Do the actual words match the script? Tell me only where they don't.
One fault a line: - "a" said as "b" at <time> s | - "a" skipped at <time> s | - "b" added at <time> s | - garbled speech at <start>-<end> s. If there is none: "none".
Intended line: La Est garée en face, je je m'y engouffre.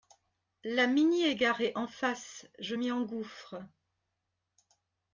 - "Mini" added at 0.9 s
- "je" skipped at 2.7 s